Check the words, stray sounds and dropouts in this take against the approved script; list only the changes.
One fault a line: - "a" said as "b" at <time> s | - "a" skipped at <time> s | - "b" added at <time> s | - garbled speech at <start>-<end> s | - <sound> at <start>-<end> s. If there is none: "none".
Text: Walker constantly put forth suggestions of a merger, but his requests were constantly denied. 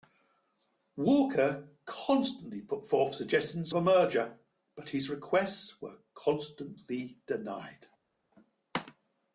- "of" skipped at 3.7 s